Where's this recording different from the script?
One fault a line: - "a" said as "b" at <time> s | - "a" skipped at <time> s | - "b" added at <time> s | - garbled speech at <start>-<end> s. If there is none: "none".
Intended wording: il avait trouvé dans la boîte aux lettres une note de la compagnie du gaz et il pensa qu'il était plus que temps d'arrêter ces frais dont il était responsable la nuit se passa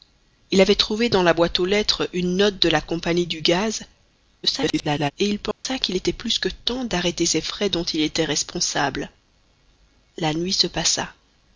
- garbled speech at 4.4-5.1 s